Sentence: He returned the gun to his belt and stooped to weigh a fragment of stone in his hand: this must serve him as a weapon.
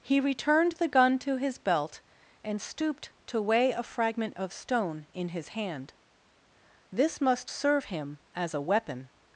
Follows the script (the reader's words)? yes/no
yes